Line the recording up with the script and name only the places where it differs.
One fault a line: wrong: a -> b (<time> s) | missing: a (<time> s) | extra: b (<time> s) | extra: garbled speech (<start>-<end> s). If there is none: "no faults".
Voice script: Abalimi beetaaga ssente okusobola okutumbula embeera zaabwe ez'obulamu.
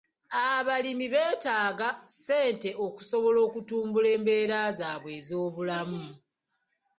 no faults